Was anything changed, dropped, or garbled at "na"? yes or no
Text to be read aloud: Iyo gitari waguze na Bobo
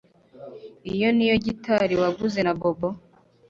no